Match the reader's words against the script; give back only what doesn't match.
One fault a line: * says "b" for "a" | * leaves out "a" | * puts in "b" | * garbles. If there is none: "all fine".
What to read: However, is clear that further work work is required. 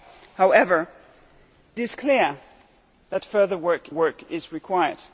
all fine